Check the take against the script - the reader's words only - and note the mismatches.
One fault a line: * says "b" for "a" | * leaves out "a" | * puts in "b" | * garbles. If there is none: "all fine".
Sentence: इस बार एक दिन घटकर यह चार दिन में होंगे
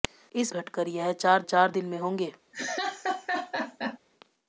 * leaves out "बार एक दिन"
* puts in "चार"